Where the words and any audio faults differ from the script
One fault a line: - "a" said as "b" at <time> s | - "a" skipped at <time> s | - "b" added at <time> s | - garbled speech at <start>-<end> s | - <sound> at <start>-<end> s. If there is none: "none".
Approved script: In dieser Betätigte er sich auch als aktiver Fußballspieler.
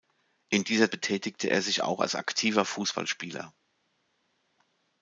none